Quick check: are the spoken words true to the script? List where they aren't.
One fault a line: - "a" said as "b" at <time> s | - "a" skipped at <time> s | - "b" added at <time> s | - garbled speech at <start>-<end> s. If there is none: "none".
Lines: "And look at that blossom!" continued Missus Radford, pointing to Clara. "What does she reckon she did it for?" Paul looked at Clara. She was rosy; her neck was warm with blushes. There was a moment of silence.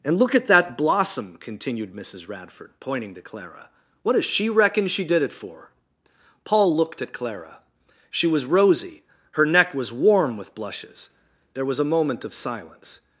none